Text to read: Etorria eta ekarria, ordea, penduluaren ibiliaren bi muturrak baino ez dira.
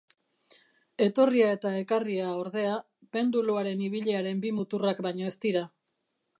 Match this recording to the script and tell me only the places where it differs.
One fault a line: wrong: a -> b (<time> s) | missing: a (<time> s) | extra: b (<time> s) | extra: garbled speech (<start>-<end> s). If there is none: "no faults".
no faults